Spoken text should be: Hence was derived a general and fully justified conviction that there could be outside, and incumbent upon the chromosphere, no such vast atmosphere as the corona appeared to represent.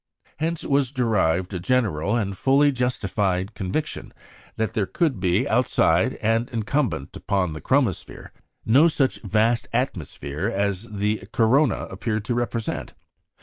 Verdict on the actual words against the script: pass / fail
pass